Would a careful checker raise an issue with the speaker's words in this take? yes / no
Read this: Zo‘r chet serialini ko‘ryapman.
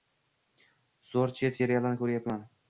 no